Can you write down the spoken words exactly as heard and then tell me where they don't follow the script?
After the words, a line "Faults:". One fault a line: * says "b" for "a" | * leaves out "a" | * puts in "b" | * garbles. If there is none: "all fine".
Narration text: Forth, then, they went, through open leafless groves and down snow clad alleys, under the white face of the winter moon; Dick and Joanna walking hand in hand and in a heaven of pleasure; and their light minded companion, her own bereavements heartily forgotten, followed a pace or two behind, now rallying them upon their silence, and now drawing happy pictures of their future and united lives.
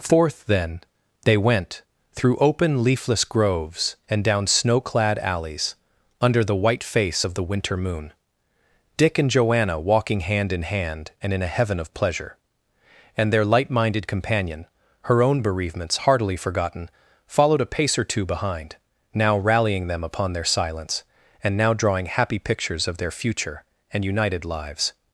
Forth, then, they went, through open leafless groves and down snow clad alleys, under the white face of the winter moon; Dick and Joanna walking hand in hand and in a heaven of pleasure; and their light minded companion, her own bereavements heartily forgotten, followed a pace or two behind, now rallying them upon their silence, and now drawing happy pictures of their future and united lives.
Faults:
all fine